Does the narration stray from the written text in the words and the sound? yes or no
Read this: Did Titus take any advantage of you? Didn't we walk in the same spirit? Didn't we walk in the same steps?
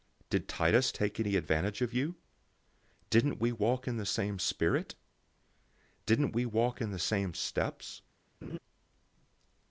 yes